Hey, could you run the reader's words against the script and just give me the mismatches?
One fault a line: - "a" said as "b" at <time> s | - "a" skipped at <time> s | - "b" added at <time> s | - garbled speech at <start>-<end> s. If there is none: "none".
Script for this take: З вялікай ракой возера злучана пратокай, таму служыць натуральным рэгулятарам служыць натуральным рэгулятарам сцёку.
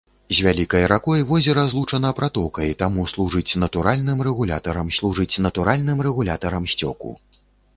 none